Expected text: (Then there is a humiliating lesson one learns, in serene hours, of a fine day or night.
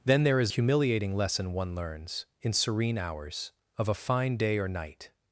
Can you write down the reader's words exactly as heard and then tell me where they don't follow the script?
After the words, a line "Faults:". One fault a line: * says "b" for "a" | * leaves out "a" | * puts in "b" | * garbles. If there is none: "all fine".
(Then there is humiliating lesson one learns, in serene hours, of a fine day or night.
Faults:
* leaves out "a"